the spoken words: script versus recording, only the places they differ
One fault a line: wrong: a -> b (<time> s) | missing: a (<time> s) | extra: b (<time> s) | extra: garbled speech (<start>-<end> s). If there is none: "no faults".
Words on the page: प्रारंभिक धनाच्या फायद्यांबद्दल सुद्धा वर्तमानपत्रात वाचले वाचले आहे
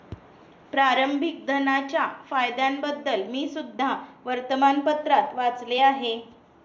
extra: मी (3.3 s)
missing: वाचले (5.8 s)